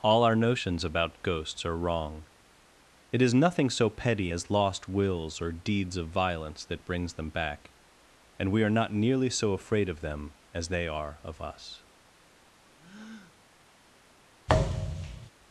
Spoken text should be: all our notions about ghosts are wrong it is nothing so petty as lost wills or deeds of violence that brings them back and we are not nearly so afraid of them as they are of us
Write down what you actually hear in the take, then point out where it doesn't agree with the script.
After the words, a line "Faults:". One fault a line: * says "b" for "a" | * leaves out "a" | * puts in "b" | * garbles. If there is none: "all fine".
all our notions about ghosts are wrong it is nothing so petty as lost wills or deeds of violence that brings them back and we are not nearly so afraid of them as they are of us
Faults:
all fine